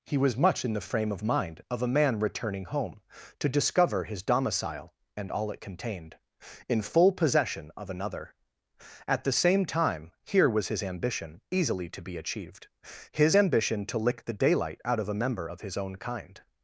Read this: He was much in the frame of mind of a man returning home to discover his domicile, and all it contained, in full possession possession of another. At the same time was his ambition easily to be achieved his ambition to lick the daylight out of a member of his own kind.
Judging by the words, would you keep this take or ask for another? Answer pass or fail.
fail